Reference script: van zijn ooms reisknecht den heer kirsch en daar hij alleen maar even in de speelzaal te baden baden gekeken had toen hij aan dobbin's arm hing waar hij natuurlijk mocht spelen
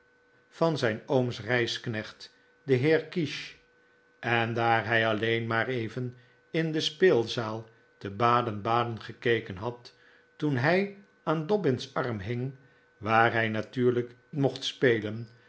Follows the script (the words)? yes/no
yes